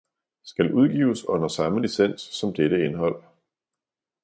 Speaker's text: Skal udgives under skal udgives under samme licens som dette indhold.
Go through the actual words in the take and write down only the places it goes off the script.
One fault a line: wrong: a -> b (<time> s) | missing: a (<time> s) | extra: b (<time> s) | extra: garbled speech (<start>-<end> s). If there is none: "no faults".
missing: skal udgives under (1.5 s)